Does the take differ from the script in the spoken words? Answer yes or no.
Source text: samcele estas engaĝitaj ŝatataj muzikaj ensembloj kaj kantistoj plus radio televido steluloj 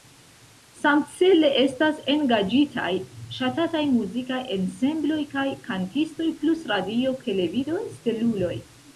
no